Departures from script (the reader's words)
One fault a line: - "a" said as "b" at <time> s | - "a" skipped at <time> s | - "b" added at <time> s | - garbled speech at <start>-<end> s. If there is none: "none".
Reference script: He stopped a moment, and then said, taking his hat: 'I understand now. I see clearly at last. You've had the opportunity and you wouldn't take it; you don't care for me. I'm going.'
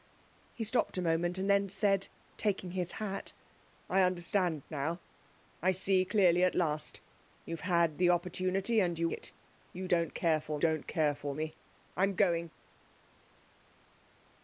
- "wouldn't take it you" said as "it you don't care for" at 9.1 s